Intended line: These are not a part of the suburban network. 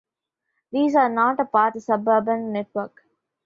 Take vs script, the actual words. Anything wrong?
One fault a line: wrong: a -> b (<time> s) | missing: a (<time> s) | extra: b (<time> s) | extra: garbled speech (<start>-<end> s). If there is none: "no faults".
missing: of (1.8 s)